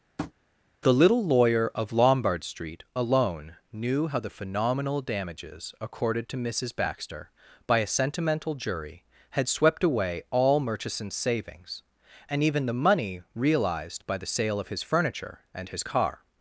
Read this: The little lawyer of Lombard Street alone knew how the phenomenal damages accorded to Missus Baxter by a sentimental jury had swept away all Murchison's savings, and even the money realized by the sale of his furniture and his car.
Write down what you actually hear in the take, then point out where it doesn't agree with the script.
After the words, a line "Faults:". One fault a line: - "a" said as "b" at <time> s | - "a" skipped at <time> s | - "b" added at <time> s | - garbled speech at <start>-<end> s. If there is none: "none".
The little lawyer of Lombard Street alone knew how the phenomenal damages accorded to Missus Baxter by a sentimental jury had swept away all Murchison's savings, and even the money realized by the sale of his furniture and his car.
Faults:
none